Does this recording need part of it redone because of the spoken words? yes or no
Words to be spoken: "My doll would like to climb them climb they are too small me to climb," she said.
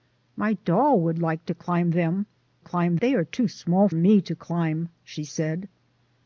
no